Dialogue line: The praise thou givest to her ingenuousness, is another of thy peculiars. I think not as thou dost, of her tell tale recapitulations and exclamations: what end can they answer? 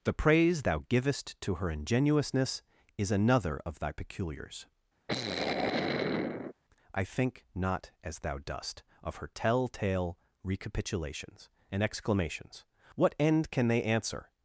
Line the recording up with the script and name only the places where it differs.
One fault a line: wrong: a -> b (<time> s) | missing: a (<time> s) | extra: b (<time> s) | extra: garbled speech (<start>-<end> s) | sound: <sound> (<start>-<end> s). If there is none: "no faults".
sound: sigh (5.1-6.5 s)